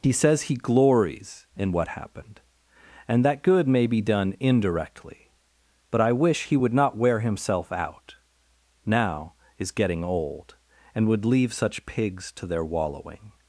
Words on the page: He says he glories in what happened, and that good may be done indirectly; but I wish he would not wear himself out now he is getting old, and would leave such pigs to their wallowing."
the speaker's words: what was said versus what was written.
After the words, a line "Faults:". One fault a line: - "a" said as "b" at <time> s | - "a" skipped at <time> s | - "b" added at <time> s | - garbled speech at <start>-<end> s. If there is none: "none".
He says he glories in what happened, and that good may be done indirectly; but I wish he would not wear himself out now is getting old, and would leave such pigs to their wallowing."
Faults:
- "he" skipped at 9.3 s